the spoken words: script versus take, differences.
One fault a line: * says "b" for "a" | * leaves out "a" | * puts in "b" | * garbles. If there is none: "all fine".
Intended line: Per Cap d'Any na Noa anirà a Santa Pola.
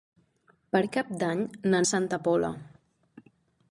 * leaves out "Noa anirà"